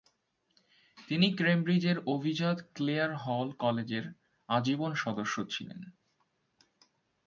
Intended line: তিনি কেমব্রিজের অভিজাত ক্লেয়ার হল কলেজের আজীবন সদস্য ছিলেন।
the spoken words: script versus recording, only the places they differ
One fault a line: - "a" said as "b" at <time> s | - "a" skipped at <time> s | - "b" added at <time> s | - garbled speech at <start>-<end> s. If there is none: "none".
none